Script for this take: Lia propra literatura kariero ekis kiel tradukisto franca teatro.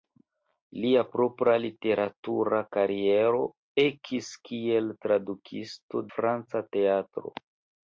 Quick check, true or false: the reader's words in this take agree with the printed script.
true